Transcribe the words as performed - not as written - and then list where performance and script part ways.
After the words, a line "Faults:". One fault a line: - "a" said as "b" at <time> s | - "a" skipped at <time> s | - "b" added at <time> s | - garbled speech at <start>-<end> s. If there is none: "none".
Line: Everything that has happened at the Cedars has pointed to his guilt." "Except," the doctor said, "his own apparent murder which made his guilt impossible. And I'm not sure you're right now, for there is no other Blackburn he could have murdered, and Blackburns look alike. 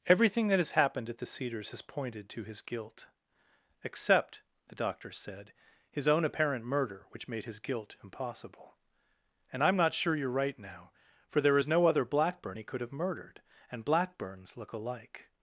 Everything that has happened at the Cedars has pointed to his guilt." "Except," the doctor said, "his own apparent murder which made his guilt impossible. And I'm not sure you're right now, for there is no other Blackburn he could have murdered, and Blackburns look alike.
Faults:
none